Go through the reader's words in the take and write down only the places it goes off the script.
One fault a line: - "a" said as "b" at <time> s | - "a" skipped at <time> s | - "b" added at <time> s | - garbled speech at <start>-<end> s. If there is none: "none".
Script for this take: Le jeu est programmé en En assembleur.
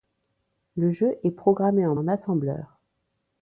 none